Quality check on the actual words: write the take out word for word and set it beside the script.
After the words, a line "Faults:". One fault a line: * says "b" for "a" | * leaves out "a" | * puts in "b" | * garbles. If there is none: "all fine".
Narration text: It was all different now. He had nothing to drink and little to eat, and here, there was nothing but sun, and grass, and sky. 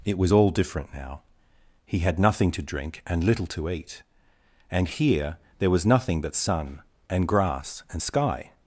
It was all different now. He had nothing to drink and little to eat, and here, there was nothing but sun, and grass, and sky.
Faults:
all fine